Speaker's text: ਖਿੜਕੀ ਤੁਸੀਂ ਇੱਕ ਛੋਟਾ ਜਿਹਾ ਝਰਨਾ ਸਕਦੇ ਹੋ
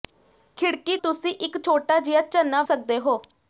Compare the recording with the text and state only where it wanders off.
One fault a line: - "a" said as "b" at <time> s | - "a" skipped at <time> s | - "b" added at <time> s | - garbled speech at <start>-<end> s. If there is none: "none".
none